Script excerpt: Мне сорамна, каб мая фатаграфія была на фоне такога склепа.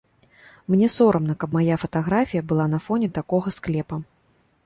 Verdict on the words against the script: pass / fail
pass